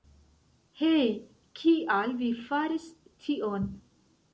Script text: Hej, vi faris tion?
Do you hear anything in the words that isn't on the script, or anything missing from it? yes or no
yes